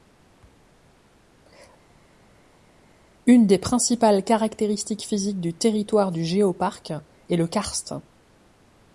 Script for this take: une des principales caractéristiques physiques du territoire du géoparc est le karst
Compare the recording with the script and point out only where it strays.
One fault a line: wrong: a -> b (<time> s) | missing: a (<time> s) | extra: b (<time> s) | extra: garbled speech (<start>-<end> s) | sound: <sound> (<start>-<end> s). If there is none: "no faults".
no faults